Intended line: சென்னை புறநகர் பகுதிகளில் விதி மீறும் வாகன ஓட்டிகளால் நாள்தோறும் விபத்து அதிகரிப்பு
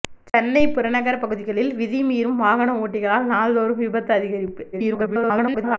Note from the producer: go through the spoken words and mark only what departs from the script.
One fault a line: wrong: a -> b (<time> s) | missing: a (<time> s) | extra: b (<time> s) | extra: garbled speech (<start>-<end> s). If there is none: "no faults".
extra: garbled speech (4.7-5.8 s)